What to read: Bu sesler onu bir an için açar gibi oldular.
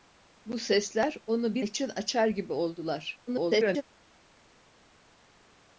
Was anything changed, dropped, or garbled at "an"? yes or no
yes